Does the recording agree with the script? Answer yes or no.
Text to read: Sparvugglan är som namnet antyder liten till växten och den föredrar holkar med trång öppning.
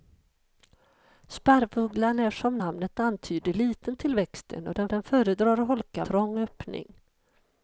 no